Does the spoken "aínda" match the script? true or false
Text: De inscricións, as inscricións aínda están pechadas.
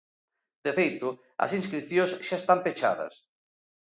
false